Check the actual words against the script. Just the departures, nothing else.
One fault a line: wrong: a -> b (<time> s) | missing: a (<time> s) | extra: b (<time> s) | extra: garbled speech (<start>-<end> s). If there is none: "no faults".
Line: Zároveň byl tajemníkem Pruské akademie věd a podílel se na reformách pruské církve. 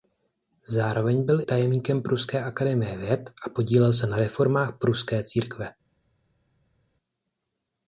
no faults